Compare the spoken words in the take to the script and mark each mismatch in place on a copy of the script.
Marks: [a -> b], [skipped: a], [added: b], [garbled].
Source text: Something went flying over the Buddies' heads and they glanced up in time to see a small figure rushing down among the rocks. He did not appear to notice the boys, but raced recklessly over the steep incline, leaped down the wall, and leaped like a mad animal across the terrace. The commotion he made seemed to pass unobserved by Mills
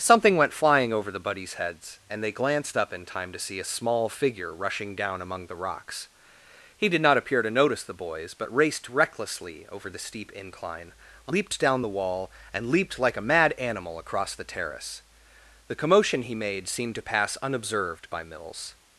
Something went flying over the Buddies' heads and they glanced up in time to see a small figure rushing down among the rocks. He did not appear to notice the boys, but raced recklessly over the steep incline, leaped down the wall, and leaped like a mad animal across the terrace. The commotion he made seemed to pass unobserved by Mills